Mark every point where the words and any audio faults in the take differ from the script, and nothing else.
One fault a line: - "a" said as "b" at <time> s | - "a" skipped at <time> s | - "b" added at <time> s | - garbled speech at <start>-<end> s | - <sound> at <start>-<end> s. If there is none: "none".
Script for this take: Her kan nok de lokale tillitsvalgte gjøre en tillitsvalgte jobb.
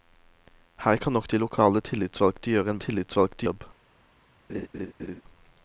- laugh at 4.5-5.2 s